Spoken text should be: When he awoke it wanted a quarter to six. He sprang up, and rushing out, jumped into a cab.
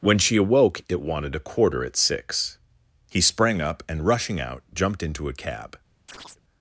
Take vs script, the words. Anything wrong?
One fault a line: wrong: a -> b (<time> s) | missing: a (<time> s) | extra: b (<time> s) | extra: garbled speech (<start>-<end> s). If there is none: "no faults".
wrong: he -> she (0.2 s)
wrong: to -> at (1.9 s)